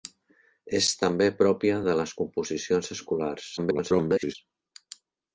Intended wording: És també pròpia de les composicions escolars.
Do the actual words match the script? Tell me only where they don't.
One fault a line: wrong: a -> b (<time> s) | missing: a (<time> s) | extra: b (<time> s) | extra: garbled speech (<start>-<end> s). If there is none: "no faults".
extra: garbled speech (3.6-4.3 s)